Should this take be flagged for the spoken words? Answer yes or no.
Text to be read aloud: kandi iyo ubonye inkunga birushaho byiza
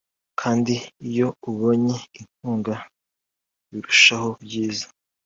no